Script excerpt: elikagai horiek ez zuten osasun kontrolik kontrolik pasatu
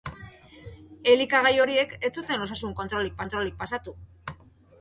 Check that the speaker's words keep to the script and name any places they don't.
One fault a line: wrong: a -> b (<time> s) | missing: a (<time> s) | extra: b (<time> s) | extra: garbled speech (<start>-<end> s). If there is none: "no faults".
no faults